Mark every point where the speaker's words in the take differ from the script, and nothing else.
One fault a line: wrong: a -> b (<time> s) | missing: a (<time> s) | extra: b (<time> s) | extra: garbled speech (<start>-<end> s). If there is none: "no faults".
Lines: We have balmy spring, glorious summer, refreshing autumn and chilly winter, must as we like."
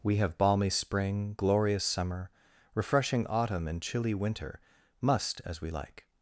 no faults